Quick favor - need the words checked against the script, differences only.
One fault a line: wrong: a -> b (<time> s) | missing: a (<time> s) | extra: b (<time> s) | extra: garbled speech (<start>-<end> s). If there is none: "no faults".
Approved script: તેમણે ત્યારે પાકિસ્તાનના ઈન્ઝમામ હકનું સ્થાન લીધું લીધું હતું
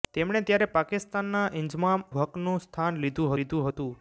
no faults